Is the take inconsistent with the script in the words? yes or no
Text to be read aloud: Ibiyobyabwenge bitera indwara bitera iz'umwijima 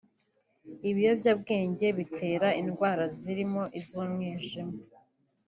yes